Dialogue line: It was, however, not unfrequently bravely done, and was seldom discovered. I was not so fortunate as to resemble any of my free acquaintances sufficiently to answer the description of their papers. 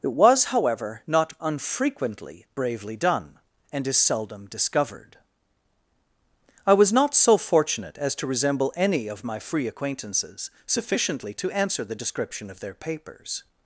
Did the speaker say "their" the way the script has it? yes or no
yes